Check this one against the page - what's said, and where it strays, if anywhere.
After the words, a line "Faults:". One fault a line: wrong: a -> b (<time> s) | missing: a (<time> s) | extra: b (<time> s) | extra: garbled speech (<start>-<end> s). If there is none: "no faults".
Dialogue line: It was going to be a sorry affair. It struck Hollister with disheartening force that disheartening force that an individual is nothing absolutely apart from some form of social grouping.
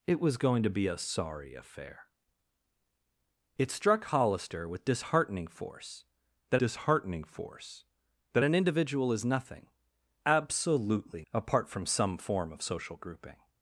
It was going to be a sorry affair. It struck Hollister with disheartening force that disheartening force that an individual is nothing absolutely apart from some form of social grouping.
Faults:
no faults